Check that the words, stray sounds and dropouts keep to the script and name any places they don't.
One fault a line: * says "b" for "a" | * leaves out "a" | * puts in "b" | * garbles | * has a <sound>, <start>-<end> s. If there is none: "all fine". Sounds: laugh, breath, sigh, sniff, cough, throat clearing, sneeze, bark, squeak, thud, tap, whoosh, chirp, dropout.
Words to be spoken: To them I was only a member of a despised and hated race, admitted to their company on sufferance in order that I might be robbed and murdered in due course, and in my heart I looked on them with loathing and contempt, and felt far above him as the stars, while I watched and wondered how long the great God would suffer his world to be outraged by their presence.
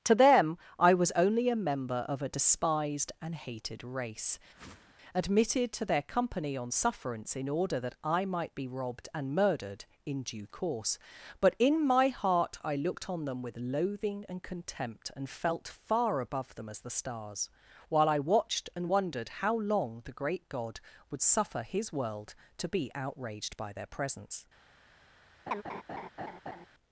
* has a whoosh, 4.5-4.9 s
* says "but" for "and"
* says "them" for "him"
* has a laugh, 25.5-26.7 s